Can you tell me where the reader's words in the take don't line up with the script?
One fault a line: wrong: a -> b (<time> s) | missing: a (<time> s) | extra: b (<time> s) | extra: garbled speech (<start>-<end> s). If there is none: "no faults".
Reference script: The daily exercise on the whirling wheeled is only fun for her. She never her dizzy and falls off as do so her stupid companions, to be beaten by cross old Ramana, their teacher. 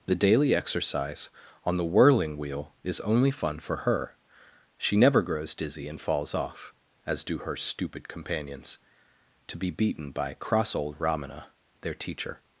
wrong: wheeled -> wheel (2.4 s)
wrong: her -> grows (5.2 s)
missing: so (7.4 s)